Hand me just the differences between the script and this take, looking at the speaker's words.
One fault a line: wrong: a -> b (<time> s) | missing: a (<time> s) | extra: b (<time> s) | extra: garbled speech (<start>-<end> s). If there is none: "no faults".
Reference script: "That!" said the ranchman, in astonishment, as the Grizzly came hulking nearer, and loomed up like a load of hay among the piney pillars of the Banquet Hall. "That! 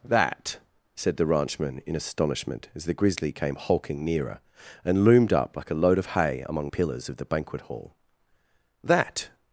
missing: the piney (6.7 s)